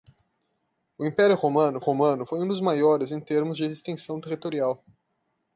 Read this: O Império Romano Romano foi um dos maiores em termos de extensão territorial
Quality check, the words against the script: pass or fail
pass